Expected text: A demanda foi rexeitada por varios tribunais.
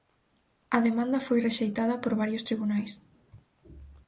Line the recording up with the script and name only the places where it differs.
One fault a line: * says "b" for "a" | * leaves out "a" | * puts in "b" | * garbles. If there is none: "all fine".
all fine